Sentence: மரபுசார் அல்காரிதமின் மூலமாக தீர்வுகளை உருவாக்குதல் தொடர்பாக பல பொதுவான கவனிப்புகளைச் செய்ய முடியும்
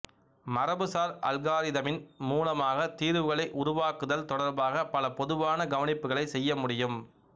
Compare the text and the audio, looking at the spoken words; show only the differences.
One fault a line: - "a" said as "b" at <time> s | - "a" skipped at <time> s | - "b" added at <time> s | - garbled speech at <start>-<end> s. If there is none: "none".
none